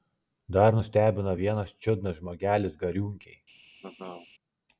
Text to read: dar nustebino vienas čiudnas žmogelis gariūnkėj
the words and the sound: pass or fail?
fail